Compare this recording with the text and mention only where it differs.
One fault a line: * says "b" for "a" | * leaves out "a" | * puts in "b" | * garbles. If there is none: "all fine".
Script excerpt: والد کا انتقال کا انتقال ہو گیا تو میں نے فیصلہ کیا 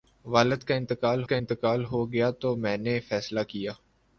all fine